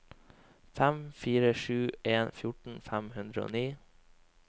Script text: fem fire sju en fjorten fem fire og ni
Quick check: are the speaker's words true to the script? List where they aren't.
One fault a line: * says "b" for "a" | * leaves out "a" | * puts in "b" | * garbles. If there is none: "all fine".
* says "hundre" for "fire"